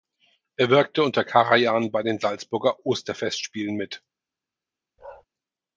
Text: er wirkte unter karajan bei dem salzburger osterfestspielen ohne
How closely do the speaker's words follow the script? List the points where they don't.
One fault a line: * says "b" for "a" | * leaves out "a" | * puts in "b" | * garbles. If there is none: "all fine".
* says "den" for "dem"
* says "mit" for "ohne"